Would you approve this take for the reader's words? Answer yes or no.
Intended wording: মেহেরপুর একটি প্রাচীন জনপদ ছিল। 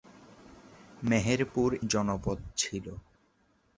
no